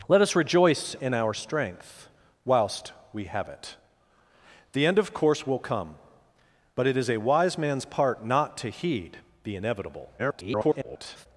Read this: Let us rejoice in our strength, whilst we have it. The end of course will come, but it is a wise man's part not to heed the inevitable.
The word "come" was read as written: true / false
true